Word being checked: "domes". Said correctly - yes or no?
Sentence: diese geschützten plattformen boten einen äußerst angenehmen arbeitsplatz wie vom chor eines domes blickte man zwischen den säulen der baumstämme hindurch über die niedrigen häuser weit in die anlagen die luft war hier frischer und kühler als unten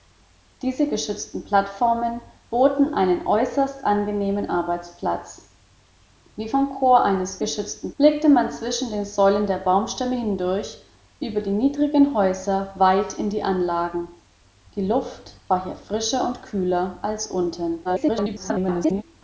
no